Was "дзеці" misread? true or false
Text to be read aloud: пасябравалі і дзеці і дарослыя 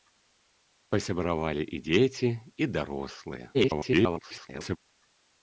false